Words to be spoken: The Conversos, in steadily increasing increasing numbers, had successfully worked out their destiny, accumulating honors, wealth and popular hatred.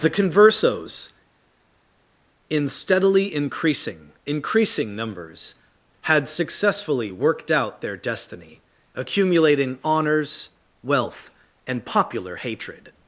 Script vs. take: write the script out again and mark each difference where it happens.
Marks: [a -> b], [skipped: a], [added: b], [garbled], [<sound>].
The Conversos, in steadily increasing increasing numbers, had successfully worked out their destiny, accumulating honors, wealth and popular hatred.